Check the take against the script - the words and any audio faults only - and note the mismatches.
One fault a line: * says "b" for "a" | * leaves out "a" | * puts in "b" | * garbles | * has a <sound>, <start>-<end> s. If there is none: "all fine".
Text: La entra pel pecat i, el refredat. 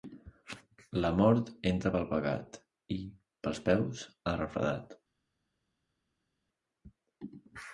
* puts in "mort"
* puts in "pels peus"